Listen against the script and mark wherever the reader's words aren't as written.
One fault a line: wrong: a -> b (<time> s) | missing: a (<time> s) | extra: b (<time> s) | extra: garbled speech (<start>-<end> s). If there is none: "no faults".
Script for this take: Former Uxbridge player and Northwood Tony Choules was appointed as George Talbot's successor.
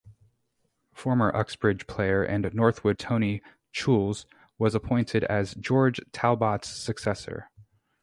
no faults